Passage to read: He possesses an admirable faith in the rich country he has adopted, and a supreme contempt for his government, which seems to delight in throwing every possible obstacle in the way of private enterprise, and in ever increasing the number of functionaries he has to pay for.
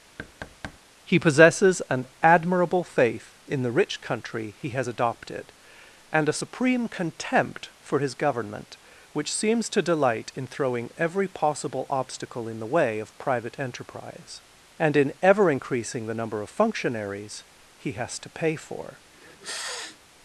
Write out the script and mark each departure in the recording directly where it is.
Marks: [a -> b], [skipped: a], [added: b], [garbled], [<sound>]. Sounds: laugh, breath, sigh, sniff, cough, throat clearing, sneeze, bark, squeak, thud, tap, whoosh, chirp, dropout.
[thud] He possesses an admirable faith in the rich country he has adopted, and a supreme contempt for his government, which seems to delight in throwing every possible obstacle in the way of private enterprise, and in ever increasing the number of functionaries he has to pay for. [sniff]